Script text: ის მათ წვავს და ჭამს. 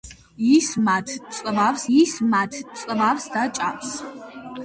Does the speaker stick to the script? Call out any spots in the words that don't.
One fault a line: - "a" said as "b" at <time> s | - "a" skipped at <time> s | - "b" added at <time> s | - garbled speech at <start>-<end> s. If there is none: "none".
- "ის მათ წვავს" added at 2.0 s